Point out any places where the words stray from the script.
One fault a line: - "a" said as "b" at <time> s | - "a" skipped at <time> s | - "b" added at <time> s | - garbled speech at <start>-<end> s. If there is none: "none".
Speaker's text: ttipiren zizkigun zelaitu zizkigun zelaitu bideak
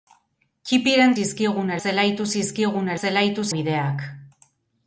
none